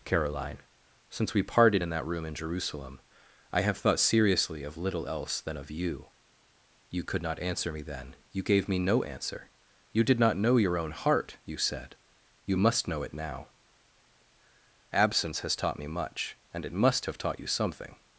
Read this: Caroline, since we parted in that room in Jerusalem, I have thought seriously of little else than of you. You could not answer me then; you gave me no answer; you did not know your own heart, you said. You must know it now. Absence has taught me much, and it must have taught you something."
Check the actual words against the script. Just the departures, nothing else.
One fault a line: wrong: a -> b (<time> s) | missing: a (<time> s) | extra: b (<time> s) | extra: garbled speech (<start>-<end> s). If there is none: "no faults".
no faults